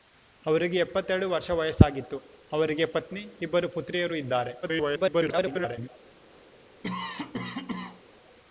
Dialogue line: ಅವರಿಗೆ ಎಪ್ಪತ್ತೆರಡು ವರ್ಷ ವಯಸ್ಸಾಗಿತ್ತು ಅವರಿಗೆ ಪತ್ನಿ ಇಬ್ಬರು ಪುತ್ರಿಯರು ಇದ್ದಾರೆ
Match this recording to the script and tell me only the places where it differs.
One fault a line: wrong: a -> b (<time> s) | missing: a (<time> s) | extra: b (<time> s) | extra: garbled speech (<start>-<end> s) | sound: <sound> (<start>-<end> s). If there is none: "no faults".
extra: garbled speech (4.6-5.9 s)
sound: cough (6.8-8.0 s)